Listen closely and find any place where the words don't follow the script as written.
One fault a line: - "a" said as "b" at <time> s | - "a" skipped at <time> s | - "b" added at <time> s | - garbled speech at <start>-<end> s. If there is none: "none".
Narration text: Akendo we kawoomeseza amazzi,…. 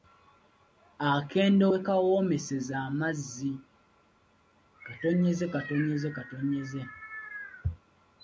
none